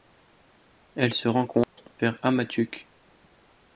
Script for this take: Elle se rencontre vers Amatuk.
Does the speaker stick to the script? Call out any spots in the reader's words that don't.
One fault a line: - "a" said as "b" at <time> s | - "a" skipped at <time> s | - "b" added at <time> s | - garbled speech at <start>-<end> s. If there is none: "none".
none